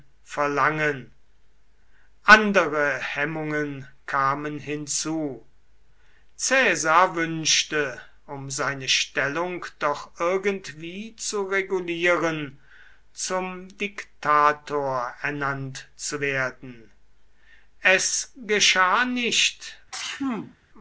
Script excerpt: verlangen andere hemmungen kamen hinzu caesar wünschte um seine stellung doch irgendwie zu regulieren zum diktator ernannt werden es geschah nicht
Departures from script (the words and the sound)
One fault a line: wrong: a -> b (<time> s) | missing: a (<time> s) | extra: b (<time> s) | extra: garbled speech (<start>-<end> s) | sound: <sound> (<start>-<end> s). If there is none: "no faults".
extra: zu (15.9 s)
sound: sneeze (19.9-20.6 s)